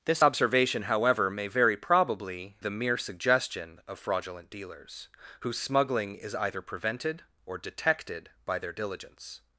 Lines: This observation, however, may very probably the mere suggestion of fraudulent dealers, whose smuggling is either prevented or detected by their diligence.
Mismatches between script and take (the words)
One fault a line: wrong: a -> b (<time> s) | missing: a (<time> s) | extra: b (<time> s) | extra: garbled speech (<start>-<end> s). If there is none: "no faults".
no faults